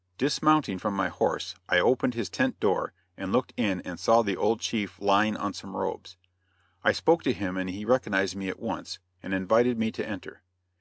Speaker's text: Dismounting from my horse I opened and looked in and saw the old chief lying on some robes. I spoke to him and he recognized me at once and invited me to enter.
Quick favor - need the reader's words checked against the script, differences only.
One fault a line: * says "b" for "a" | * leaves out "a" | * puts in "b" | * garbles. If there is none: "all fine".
* puts in "his tent door"